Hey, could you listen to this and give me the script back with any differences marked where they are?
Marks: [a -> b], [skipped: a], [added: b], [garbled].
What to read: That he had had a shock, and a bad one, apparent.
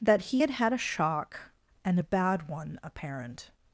That he had had a shock, and a bad one, apparent.